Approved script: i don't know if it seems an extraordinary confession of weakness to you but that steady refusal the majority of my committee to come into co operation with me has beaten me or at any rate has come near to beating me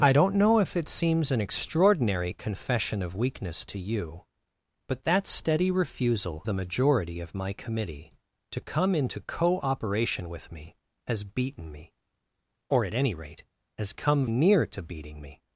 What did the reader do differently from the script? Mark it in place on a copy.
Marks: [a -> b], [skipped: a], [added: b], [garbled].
i don't know if it seems an extraordinary confession of weakness to you but that steady refusal the majority of my committee to come into co operation with me has beaten me or at any rate has come near to beating me